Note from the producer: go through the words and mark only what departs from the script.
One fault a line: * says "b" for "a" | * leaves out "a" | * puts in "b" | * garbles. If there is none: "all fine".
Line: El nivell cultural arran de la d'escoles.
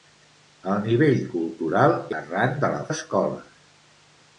all fine